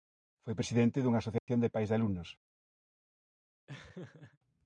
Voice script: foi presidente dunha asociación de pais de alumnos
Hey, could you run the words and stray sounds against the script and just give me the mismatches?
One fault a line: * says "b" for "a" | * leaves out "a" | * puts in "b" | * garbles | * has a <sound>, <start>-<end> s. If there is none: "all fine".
* has a dropout, 1.4-1.5 s
* has a laugh, 3.7-4.4 s